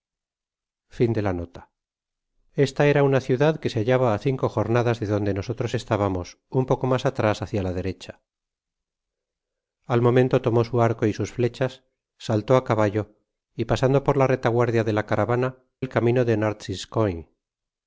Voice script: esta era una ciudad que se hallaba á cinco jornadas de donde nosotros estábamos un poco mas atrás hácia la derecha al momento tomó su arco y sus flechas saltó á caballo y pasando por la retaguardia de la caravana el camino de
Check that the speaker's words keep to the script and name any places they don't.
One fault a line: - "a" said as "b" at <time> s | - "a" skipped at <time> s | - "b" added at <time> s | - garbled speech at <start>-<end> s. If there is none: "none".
none